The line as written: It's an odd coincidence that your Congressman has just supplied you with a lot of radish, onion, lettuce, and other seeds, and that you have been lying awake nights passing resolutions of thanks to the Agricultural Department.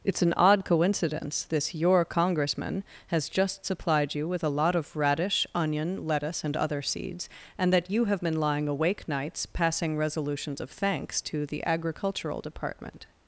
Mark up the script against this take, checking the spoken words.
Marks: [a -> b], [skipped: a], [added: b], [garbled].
It's an odd coincidence [that -> this] your Congressman has just supplied you with a lot of radish, onion, lettuce, and other seeds, and that you have been lying awake nights passing resolutions of thanks to the Agricultural Department.